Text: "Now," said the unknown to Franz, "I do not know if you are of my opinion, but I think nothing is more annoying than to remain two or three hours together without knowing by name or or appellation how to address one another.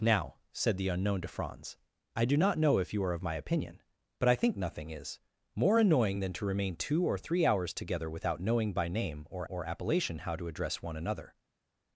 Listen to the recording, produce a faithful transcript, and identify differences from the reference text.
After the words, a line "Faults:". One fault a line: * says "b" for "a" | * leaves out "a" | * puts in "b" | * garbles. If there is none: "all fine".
"Now," said the unknown to Franz, "I do not know if you are of my opinion, but I think nothing is more annoying than to remain two or three hours together without knowing by name or or appellation how to address one another.
Faults:
all fine